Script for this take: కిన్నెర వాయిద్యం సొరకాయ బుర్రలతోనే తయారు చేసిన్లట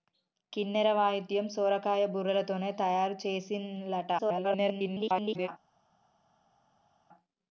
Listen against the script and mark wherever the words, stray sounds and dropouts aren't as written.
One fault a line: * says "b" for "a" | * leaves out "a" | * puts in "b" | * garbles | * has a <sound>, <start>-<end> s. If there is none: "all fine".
* garbles